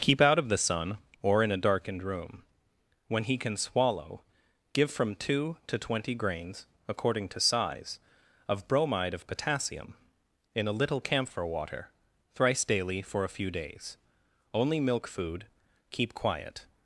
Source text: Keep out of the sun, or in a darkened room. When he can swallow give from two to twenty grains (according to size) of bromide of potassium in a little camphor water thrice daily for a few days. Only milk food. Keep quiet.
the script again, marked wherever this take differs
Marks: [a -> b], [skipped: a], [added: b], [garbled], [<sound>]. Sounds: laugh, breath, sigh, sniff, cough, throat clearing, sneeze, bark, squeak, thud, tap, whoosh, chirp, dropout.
Keep out of the sun, or in a darkened room. When he can swallow give from two to twenty grains (according to size) of bromide of potassium in a little camphor water thrice daily for a few days. Only milk food. Keep quiet.